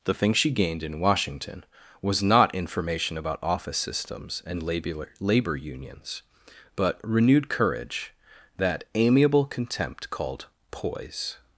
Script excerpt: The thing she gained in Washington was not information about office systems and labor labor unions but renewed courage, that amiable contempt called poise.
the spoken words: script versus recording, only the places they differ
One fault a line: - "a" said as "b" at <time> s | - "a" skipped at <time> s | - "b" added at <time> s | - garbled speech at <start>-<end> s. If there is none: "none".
none